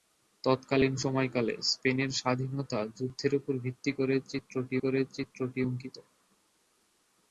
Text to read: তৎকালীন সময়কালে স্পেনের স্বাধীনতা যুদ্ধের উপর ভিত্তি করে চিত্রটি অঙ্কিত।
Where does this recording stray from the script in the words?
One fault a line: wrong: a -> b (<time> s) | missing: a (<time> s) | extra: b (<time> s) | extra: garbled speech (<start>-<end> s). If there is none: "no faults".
extra: করে চিত্রটি (4.8 s)